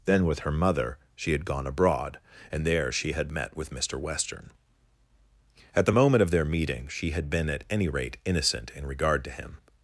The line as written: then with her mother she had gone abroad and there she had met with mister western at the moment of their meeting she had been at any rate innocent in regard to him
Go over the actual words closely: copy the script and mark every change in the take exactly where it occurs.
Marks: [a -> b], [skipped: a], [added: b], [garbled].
then with her mother she had gone abroad and there she had met with mister western at the moment of their meeting she had been at any rate innocent in regard to him